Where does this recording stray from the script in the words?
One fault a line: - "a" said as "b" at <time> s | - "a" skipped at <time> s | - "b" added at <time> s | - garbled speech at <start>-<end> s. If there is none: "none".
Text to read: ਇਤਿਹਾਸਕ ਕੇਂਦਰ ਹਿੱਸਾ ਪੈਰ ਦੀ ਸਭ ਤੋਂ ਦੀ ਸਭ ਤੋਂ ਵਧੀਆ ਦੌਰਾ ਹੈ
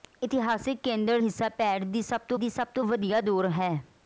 none